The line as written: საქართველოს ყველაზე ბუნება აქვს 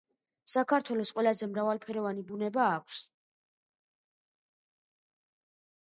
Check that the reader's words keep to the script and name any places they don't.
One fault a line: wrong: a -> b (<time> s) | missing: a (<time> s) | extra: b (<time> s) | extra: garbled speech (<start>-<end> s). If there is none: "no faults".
extra: მრავალფეროვანი (1.5 s)